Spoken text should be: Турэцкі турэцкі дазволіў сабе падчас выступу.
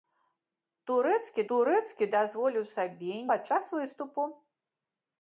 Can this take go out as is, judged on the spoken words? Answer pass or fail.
pass